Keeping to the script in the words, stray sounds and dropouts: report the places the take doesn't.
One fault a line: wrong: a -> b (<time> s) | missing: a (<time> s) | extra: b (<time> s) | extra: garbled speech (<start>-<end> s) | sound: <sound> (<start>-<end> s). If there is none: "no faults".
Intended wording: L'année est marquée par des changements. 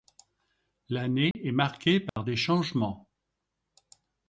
sound: dropout (1.3-1.3 s)
sound: dropout (2.1-2.2 s)